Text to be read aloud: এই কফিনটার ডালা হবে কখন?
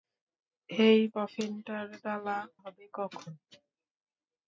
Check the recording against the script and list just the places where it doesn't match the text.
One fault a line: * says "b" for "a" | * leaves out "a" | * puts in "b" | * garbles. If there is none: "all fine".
all fine